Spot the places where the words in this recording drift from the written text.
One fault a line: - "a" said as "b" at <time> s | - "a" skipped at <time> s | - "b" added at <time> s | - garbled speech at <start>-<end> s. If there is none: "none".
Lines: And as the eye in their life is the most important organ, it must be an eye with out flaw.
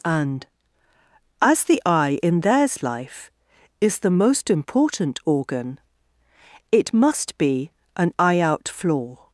- "their" said as "theirs" at 2.4 s
- "with" skipped at 8.4 s